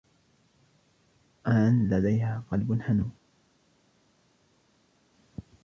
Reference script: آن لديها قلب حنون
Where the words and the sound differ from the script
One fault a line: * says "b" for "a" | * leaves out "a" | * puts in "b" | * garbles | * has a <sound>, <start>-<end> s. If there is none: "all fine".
all fine